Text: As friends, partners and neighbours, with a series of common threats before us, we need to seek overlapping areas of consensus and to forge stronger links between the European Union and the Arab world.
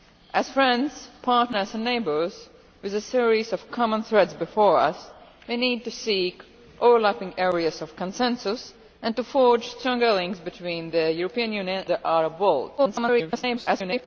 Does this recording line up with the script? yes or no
no